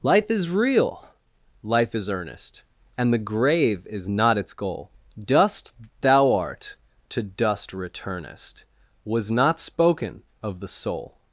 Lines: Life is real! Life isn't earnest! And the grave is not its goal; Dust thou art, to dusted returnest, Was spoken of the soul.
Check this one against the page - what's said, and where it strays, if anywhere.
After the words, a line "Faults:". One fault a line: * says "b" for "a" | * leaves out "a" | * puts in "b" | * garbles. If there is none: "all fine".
Life is real! Life is earnest! And the grave is not its goal; Dust thou art, to dust returnest, Was not spoken of the soul.
Faults:
* says "is" for "isn't"
* says "dust" for "dusted"
* puts in "not"